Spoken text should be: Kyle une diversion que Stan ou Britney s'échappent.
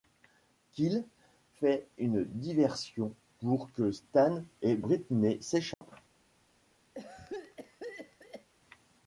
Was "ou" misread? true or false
true